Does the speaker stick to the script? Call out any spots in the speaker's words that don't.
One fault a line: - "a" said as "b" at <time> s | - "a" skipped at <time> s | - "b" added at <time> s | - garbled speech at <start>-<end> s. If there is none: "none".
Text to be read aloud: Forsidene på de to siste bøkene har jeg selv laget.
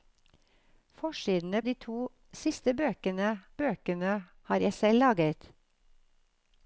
- "på" skipped at 1.6 s
- "bøkene" added at 3.6 s